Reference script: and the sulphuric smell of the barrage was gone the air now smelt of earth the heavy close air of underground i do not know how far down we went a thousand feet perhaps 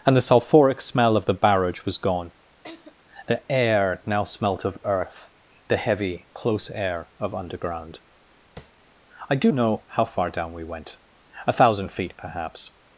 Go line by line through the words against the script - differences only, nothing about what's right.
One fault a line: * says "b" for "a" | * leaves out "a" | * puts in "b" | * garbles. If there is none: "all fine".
* leaves out "not"